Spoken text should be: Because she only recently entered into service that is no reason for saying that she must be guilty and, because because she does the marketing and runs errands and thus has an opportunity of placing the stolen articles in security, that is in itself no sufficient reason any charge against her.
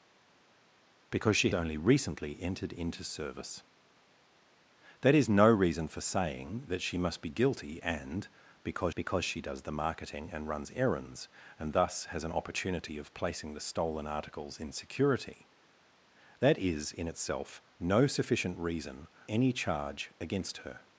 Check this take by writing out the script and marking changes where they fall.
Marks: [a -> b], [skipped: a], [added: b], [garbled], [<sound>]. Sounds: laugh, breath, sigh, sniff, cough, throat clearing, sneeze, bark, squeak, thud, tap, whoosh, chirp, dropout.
Because she only recently entered into service that is no reason for saying that she must be guilty and, because because she does the marketing and runs errands and thus has an opportunity of placing the stolen articles in security, that is in itself no sufficient reason any charge against her.